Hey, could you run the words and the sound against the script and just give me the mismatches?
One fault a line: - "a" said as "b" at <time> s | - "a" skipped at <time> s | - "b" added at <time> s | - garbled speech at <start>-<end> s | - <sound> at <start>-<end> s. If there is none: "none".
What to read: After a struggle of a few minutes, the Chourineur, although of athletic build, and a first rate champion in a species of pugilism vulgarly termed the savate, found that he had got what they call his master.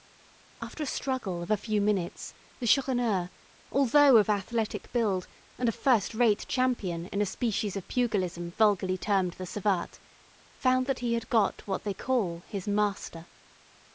none